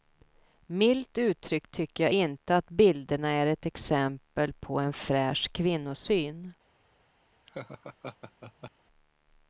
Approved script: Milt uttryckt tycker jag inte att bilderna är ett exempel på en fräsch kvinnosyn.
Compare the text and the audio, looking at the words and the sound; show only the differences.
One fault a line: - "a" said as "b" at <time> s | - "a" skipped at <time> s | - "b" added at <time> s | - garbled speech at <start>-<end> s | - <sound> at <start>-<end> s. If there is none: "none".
- laugh at 7.5-8.7 s